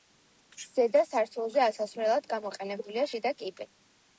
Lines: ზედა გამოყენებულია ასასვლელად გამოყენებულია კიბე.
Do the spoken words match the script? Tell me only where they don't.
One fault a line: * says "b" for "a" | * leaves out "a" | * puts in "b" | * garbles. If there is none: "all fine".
* says "სართულზე" for "გამოყენებულია"
* puts in "შიდა"